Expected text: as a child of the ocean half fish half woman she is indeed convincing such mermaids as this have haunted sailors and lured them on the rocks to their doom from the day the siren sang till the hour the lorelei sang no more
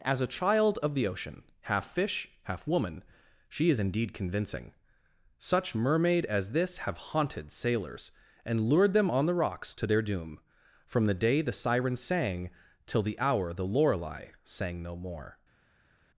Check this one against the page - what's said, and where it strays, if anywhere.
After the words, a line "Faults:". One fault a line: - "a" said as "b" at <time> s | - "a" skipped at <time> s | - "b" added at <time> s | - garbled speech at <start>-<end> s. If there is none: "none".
as a child of the ocean half fish half woman she is indeed convincing such mermaid as this have haunted sailors and lured them on the rocks to their doom from the day the siren sang till the hour the lorelei sang no more
Faults:
- "mermaids" said as "mermaid" at 5.8 s